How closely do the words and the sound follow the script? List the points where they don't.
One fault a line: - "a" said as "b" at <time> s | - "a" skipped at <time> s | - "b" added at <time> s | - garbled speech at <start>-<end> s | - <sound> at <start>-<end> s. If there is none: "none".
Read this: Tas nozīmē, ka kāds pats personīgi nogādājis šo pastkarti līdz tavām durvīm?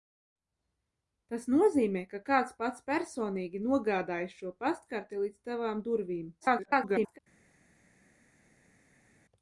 - garbled speech at 6.4-7.2 s